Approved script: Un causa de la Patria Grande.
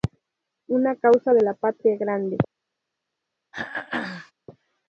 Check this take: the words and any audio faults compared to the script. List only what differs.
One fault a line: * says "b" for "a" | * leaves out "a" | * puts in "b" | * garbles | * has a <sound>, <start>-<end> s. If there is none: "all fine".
* says "Una" for "Un"
* has a throat clearing, 3.5-4.3 s